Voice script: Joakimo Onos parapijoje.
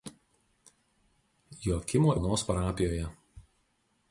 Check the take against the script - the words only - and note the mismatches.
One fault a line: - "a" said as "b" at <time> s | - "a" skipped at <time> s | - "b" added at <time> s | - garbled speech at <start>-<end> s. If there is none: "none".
none